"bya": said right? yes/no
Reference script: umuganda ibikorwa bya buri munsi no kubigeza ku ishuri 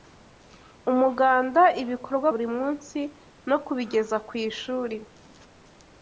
no